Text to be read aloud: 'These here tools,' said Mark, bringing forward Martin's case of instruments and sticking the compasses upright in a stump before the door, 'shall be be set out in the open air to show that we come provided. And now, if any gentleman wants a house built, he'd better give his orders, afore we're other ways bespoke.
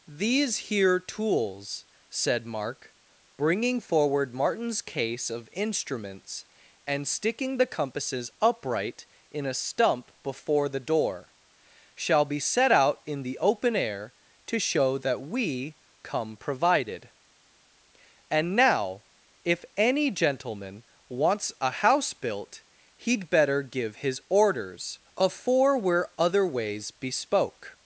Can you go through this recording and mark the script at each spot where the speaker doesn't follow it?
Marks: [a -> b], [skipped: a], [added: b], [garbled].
'These here tools,' said Mark, bringing forward Martin's case of instruments and sticking the compasses upright in a stump before the door, 'shall be [skipped: be] set out in the open air to show that we come provided. And now, if any gentleman wants a house built, he'd better give his orders, afore we're other ways bespoke.